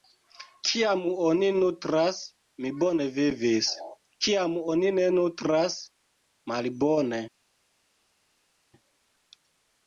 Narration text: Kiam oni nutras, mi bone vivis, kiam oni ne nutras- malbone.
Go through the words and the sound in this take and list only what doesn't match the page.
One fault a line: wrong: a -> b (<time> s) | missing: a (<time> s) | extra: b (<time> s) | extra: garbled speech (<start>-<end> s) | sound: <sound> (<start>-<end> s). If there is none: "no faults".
no faults